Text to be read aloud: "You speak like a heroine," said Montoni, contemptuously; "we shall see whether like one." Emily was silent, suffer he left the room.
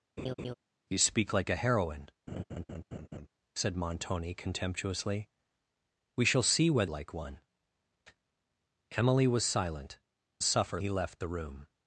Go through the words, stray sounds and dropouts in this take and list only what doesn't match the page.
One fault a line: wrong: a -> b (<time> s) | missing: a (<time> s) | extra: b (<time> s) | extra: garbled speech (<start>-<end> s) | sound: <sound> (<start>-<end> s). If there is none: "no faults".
sound: laugh (0.2-0.5 s)
sound: laugh (2.3-3.3 s)